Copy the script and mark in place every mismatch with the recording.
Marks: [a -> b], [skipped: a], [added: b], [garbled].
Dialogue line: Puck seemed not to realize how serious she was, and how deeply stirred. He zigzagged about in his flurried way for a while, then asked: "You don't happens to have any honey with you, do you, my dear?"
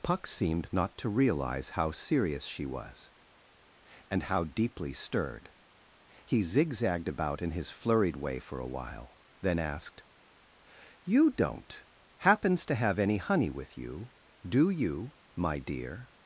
Puck seemed not to realize how serious she was, and how deeply stirred. He zigzagged about in his flurried way for a while, then asked: "You don't happens to have any honey with you, do you, my dear?"